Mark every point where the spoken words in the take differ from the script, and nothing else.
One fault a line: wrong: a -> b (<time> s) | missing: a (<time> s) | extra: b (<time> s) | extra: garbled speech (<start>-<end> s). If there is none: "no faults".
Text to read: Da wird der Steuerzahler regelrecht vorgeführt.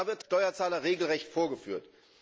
missing: der (0.2 s)